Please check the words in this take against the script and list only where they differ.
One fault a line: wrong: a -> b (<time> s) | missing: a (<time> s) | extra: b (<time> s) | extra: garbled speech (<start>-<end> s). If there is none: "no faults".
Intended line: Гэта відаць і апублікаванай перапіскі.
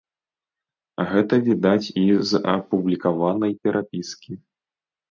extra: з (2.3 s)